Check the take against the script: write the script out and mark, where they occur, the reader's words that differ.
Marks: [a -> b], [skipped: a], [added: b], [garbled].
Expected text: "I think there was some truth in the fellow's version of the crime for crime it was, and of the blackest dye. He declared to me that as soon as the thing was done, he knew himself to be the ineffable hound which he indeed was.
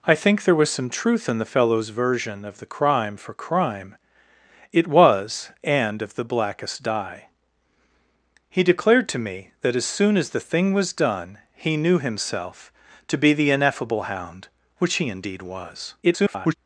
"I think there was some truth in the fellow's version of the crime for crime it was, and of the blackest dye. He declared to me that as soon as the thing was done, he knew himself to be the ineffable hound which he indeed was. [garbled]